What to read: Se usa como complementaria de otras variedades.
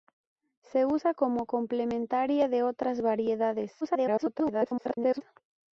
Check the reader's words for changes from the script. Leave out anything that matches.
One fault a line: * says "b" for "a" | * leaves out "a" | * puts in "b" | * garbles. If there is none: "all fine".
* garbles